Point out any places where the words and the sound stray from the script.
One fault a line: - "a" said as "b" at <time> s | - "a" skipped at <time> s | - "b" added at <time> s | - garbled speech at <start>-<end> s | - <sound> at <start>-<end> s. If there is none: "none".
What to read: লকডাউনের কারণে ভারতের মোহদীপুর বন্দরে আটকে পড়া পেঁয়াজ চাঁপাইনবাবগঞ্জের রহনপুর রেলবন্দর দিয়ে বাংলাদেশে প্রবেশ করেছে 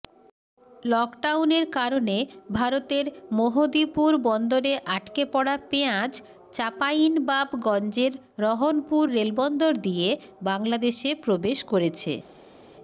none